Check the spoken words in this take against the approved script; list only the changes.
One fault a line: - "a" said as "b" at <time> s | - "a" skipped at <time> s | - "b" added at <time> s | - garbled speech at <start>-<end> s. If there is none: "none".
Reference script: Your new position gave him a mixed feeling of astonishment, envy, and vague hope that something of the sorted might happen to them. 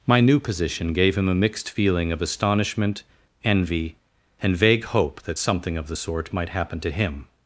- "Your" said as "My" at 0.1 s
- "sorted" said as "sort" at 5.9 s
- "them" said as "him" at 6.9 s